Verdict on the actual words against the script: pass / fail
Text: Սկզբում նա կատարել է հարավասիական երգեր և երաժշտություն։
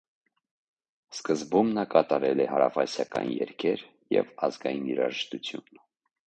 fail